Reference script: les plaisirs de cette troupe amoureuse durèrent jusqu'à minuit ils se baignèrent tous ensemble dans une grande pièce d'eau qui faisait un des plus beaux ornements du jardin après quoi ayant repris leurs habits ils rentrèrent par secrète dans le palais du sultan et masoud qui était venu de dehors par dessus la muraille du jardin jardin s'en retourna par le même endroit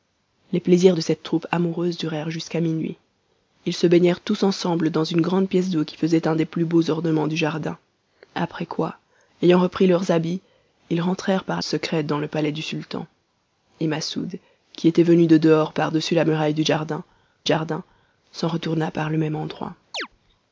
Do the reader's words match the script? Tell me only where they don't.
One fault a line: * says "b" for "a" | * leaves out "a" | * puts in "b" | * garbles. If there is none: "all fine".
all fine